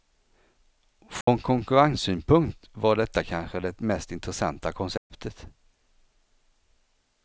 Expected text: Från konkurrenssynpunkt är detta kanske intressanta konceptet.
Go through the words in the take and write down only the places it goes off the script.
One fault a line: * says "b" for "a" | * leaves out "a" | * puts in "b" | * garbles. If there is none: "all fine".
* says "var" for "är"
* puts in "det mest"